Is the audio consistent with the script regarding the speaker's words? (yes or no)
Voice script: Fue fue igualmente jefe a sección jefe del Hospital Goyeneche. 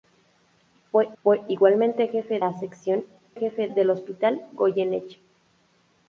yes